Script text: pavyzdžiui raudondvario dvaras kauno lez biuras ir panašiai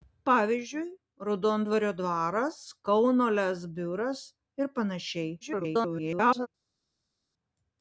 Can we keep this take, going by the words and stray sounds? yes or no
no